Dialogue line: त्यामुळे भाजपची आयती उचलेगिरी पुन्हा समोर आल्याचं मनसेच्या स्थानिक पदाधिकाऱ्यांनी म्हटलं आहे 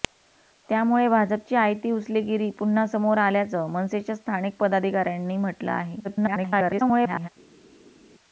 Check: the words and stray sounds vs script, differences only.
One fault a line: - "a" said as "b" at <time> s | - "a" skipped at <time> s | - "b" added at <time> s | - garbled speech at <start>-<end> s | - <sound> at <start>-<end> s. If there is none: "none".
- garbled speech at 6.0-7.3 s